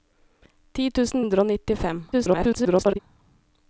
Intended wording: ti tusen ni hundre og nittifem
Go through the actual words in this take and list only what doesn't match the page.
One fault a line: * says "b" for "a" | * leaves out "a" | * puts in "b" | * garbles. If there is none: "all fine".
* leaves out "ni"
* garbles